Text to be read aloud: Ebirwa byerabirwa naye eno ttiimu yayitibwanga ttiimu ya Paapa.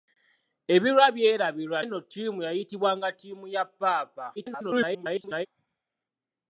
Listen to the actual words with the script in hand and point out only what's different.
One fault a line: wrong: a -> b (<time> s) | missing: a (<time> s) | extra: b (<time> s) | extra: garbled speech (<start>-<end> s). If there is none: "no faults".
missing: naye (1.8 s)
extra: garbled speech (4.4-5.5 s)